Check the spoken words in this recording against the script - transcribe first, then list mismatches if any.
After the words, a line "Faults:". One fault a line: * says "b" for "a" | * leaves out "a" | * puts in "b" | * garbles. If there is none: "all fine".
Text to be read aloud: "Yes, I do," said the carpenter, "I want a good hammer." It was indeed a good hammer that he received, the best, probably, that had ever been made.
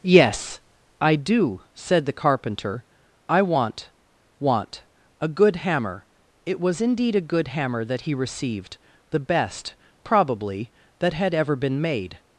"Yes, I do," said the carpenter, "I want want a good hammer." It was indeed a good hammer that he received, the best, probably, that had ever been made.
Faults:
* puts in "want"